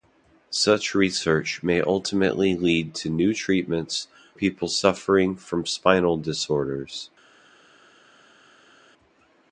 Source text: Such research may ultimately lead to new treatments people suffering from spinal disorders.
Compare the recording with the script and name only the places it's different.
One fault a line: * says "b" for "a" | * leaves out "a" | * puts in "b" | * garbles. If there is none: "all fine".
all fine